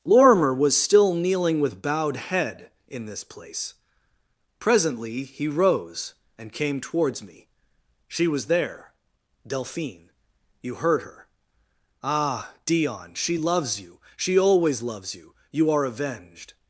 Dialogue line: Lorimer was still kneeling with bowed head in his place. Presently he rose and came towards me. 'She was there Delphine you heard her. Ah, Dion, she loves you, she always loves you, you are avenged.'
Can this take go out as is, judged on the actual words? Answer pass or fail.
fail